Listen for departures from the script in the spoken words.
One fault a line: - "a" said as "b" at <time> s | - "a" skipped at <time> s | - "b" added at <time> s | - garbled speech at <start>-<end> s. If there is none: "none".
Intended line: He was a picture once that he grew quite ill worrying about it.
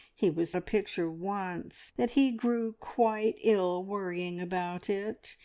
none